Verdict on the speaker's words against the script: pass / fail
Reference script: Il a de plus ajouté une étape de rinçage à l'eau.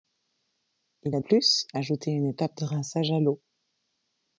fail